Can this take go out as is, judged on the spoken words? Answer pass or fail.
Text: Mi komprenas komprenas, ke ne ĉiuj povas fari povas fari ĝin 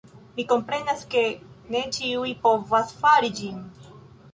fail